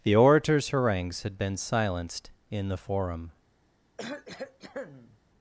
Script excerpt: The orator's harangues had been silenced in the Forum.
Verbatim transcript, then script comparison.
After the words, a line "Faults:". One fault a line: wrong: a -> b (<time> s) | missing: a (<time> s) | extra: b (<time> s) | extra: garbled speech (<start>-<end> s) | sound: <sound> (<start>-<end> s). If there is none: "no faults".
The orator's harangues had been silenced in the Forum.
Faults:
sound: cough (4.0-5.2 s)